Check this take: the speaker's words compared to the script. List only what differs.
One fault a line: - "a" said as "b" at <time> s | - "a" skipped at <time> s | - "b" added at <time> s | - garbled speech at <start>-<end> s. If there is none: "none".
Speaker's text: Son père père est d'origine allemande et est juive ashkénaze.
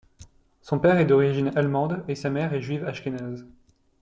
- "père" skipped at 1.0 s
- "sa mère" added at 2.2 s